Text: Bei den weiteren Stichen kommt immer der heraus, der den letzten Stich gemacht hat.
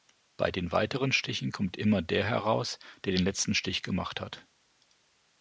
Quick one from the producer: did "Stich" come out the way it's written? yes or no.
yes